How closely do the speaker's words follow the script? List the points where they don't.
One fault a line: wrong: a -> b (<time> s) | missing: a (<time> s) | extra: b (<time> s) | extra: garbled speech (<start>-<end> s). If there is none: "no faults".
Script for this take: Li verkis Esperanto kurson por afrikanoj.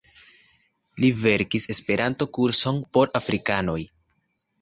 no faults